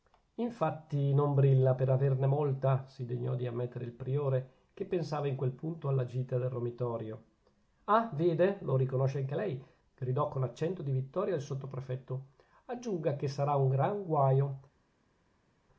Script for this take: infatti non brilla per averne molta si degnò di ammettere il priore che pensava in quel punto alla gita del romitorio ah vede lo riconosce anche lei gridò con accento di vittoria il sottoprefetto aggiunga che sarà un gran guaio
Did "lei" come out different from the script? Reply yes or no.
no